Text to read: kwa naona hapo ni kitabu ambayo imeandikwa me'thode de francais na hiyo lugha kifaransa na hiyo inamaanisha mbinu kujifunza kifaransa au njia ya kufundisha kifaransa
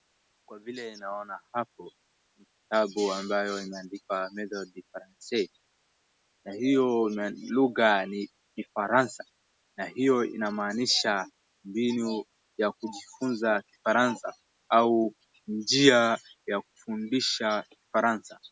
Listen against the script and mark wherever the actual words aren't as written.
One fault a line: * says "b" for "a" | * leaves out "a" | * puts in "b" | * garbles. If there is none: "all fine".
* puts in "vile"
* puts in "ni"
* puts in "ya"